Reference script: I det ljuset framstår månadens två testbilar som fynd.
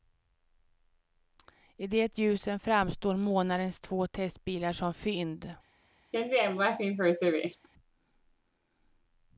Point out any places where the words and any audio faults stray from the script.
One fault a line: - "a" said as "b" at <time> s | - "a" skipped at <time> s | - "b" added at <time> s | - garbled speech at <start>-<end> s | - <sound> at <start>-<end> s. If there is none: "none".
- laugh at 6.1-7.7 s